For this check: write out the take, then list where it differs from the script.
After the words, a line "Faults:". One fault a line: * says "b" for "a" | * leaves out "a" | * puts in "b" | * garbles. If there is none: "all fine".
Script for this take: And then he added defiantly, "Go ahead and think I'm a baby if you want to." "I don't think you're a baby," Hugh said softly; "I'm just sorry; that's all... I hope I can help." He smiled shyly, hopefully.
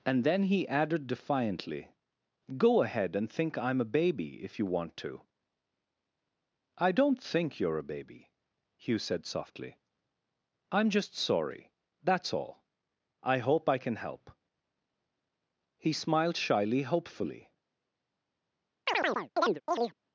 And then he added defiantly, "Go ahead and think I'm a baby if you want to." "I don't think you're a baby," Hugh said softly; "I'm just sorry; that's all... I hope I can help." He smiled shyly, hopefully.
Faults:
all fine